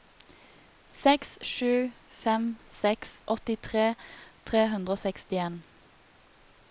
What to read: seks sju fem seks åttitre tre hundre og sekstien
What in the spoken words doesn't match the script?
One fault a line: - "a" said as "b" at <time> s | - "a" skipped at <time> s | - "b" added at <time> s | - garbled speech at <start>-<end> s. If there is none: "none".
none